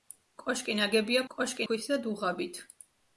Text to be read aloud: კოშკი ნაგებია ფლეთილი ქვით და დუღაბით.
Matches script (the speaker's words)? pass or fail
fail